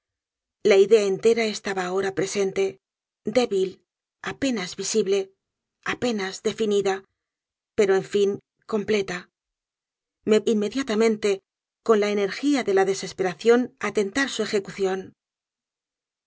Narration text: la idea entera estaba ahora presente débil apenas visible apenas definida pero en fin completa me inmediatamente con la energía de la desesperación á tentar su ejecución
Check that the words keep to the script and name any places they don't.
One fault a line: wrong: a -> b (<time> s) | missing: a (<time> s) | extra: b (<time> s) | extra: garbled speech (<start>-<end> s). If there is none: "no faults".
no faults